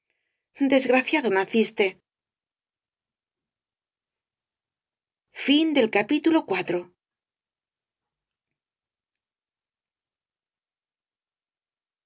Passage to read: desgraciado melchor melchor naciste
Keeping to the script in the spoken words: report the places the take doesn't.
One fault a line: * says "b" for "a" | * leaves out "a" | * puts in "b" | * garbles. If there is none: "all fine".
* leaves out "melchor melchor"